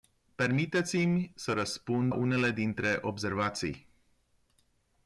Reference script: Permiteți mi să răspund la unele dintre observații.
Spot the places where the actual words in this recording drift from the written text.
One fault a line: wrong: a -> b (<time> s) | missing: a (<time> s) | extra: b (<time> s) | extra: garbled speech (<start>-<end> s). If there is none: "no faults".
missing: la (2.1 s)